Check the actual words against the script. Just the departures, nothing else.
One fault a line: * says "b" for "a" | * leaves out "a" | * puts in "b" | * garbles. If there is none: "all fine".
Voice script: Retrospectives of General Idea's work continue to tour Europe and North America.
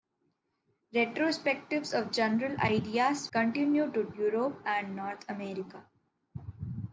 * leaves out "work"
* leaves out "tour"